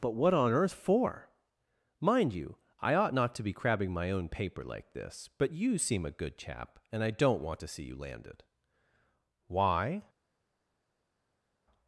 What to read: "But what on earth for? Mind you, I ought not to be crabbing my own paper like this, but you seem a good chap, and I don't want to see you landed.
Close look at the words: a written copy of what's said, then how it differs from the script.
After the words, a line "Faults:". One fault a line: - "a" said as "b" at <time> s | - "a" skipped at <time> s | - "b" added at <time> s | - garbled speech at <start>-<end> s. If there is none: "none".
"But what on earth for? Mind you, I ought not to be crabbing my own paper like this, but you seem a good chap, and I don't want to see you landed. Why
Faults:
- "Why" added at 9.5 s